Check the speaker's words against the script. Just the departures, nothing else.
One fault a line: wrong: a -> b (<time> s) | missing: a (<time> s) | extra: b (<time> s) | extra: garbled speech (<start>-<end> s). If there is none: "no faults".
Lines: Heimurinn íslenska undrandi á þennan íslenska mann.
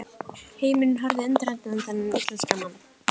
wrong: íslenska -> horfði (1.0 s)